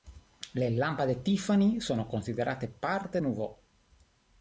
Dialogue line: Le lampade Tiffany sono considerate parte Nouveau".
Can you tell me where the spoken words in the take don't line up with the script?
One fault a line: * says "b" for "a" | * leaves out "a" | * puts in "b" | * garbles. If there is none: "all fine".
all fine